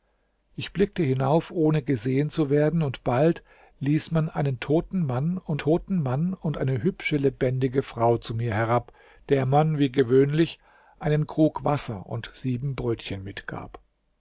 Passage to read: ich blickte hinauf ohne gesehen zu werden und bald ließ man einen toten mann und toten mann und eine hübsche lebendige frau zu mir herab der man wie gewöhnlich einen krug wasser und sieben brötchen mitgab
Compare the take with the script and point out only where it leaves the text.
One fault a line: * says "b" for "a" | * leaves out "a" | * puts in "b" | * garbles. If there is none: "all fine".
all fine